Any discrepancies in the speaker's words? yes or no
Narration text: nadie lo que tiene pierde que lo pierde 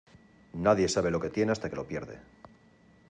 yes